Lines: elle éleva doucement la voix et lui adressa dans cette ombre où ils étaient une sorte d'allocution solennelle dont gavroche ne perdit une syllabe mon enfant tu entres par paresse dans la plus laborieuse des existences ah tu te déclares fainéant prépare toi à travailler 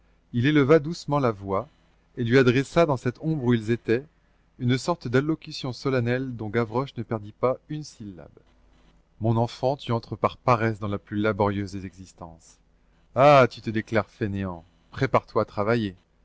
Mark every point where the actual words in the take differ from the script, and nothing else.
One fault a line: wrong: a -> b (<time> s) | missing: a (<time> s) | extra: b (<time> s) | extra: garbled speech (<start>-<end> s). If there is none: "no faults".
wrong: elle -> il (0.3 s)
extra: pas (7.3 s)